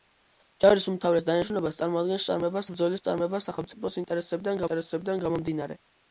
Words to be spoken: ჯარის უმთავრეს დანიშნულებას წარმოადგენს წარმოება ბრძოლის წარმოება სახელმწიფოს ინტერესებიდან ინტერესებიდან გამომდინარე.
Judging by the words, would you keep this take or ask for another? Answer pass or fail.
pass